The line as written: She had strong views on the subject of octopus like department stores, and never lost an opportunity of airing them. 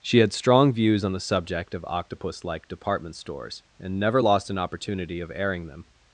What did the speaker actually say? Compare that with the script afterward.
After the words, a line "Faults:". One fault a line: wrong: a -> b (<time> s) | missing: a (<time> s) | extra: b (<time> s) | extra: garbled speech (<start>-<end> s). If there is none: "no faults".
She had strong views on the subject of octopus like department stores, and never lost an opportunity of airing them.
Faults:
no faults